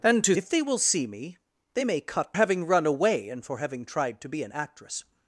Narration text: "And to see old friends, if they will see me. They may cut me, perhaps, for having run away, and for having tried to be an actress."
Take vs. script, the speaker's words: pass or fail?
fail